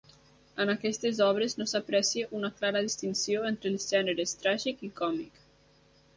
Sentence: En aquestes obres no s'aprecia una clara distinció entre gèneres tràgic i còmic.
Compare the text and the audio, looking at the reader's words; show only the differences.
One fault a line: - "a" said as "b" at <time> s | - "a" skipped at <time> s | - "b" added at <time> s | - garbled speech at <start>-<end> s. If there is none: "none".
- "els" added at 3.7 s